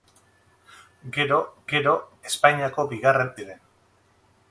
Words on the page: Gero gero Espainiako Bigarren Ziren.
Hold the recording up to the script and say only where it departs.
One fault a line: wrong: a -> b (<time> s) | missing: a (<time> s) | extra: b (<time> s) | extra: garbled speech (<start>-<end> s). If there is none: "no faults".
no faults